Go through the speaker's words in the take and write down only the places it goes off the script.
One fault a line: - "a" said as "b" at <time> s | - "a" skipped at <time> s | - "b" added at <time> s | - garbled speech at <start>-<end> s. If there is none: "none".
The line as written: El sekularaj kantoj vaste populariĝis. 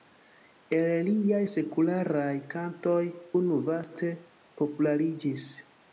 - "liaj" added at 1.1 s
- "unu" added at 3.4 s